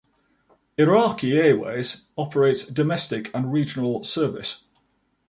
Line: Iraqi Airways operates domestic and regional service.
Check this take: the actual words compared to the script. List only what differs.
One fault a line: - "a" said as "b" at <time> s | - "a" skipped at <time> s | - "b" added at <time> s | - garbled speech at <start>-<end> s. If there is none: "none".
none